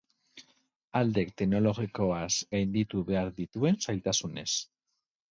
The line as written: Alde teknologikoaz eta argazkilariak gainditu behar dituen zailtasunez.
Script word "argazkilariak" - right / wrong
wrong